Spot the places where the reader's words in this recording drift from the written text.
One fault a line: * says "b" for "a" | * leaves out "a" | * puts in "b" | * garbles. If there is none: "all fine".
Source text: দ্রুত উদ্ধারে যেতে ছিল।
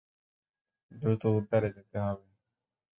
* says "হবে" for "ছিল"